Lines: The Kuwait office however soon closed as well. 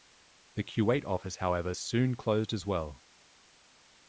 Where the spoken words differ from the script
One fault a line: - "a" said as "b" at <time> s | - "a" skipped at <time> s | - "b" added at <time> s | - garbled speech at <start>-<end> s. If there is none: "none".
none